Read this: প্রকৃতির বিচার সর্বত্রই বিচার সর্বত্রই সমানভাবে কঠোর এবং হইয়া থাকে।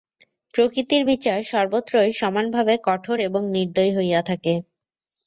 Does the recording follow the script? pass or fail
fail